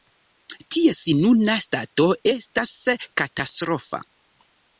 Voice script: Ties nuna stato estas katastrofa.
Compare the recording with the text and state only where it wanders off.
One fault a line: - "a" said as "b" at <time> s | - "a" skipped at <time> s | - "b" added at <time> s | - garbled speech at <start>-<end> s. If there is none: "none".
none